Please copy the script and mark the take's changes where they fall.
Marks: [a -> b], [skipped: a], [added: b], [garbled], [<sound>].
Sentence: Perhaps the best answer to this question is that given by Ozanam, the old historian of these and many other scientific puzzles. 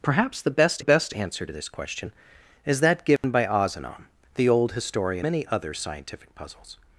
Perhaps the best [added: best] answer to this question is that given [dropout] by Ozanam, the old historian [skipped: of these and] many other scientific puzzles.